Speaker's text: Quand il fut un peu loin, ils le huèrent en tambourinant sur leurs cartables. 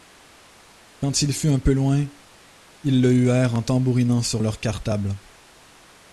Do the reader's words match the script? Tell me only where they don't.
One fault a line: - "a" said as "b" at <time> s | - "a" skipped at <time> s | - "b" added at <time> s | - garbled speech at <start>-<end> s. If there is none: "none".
none